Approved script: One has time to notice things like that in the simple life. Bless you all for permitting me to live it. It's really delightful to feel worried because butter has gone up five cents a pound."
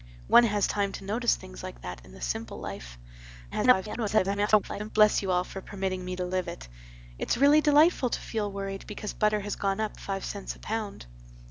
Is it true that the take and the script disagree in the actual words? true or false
true